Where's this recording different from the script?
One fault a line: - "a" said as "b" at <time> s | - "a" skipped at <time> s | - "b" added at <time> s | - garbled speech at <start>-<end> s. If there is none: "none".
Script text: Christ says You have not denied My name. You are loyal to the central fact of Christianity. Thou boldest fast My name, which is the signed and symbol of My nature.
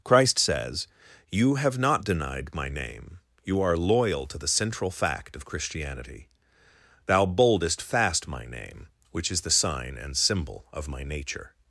- "signed" said as "sign" at 9.5 s